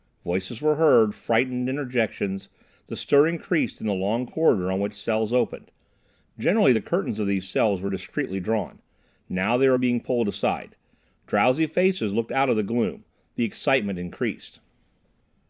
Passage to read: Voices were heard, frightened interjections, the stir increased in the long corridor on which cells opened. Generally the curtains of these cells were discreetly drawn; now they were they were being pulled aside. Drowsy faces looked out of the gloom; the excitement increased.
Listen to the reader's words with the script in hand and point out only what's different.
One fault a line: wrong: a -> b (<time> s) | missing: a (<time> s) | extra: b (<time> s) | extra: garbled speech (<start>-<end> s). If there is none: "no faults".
missing: they were (9.8 s)